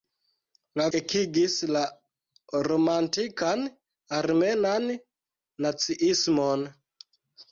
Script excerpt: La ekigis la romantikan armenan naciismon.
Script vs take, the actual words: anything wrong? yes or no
no